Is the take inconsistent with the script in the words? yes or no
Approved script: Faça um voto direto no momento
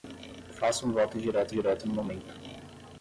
yes